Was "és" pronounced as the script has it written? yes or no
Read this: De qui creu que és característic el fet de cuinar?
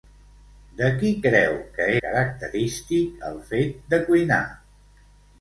no